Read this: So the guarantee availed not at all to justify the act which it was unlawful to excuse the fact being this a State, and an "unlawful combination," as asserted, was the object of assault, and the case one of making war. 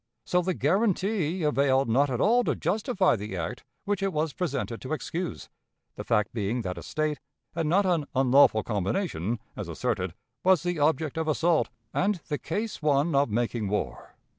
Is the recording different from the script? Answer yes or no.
yes